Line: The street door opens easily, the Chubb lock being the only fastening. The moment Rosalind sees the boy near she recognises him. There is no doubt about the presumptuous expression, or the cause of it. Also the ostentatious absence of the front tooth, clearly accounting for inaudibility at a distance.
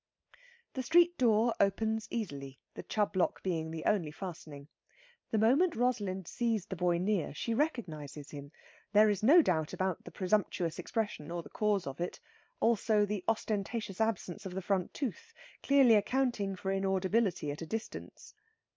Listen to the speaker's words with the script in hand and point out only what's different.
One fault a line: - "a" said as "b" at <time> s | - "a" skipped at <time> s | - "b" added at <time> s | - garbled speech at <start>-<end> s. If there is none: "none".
none